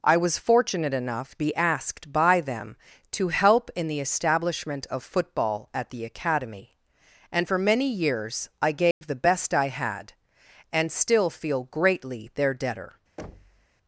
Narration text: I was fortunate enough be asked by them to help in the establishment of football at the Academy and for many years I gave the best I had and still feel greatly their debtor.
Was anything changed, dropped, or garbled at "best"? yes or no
no